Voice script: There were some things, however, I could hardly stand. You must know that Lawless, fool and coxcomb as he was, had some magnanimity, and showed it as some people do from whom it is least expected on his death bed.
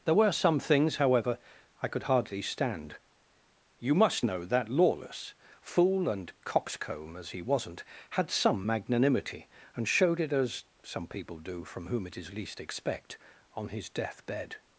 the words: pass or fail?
fail